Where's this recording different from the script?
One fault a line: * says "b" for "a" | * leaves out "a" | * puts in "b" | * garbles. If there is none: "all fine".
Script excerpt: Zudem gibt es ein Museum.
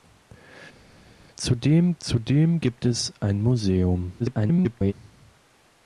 * puts in "zudem"
* garbles